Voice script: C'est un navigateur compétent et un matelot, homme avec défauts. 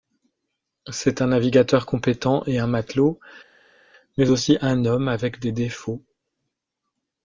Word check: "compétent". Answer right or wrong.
right